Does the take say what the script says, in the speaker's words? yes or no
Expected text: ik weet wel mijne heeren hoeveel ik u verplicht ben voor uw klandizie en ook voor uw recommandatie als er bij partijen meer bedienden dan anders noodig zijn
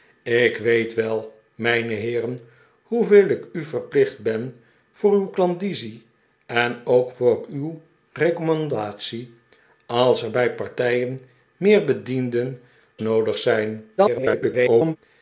no